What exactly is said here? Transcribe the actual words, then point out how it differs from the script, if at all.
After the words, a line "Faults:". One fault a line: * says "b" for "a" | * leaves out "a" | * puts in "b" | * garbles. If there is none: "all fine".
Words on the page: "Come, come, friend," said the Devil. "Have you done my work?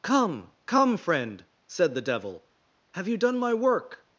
"Come, come, friend," said the Devil. "Have you done my work?
Faults:
all fine